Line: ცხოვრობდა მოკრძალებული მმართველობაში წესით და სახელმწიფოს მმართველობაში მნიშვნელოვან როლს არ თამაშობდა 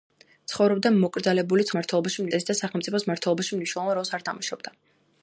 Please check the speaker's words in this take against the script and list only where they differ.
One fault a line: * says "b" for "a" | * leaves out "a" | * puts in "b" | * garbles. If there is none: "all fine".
all fine